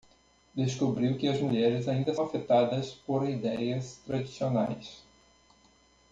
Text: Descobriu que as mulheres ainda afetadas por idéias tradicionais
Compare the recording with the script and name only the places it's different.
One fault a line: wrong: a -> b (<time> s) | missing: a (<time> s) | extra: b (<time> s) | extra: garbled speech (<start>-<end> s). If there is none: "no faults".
no faults